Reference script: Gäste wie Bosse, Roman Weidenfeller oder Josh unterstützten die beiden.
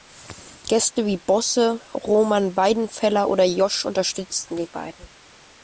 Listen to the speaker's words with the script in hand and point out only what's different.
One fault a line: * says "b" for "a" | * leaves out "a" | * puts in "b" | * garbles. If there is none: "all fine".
all fine